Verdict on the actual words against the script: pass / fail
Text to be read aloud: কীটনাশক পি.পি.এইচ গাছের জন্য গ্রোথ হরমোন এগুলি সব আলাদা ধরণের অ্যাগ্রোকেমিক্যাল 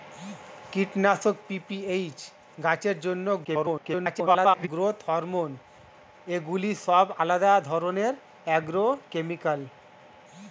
fail